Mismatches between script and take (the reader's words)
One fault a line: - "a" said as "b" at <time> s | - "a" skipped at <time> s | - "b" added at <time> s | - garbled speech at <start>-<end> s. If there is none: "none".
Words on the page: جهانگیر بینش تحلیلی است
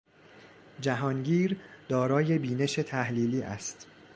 - "دارای" added at 1.9 s